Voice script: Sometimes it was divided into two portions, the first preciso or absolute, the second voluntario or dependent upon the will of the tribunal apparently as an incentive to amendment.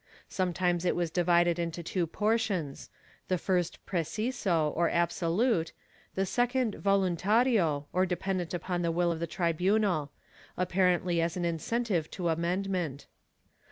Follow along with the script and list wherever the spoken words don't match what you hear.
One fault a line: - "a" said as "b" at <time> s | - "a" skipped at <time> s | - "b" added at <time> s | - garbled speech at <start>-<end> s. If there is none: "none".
none